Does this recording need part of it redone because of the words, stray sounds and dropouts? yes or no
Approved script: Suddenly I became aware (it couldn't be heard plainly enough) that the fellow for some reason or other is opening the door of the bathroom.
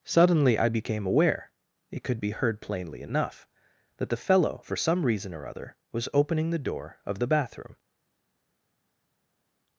yes